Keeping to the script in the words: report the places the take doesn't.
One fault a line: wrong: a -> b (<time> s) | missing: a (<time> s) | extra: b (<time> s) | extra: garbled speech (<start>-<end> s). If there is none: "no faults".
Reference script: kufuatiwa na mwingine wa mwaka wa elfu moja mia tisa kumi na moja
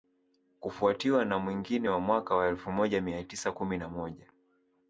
no faults